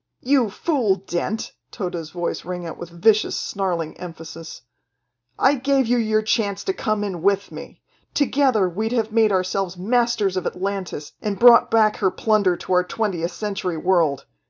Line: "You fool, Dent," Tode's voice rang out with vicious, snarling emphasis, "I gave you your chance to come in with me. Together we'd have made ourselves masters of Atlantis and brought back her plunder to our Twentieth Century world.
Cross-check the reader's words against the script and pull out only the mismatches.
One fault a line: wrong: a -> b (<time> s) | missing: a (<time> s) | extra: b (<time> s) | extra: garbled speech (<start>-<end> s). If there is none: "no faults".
no faults